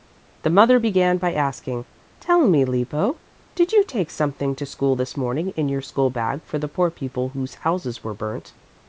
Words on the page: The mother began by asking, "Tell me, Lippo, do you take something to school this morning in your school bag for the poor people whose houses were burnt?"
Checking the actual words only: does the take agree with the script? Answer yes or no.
no